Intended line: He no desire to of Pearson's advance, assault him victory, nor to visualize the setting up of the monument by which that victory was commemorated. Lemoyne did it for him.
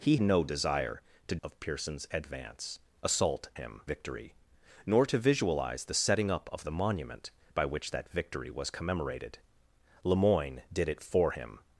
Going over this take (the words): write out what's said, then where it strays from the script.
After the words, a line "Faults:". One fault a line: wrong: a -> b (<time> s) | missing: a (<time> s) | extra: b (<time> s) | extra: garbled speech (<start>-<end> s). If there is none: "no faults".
He no desire to of Pearson's advance, assault him victory, nor to visualize the setting up of the monument by which that victory was commemorated. Lemoyne did it for him.
Faults:
no faults